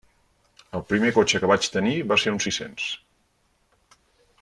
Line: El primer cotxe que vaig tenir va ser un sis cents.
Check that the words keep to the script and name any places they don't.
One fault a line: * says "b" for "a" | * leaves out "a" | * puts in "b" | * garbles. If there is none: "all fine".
all fine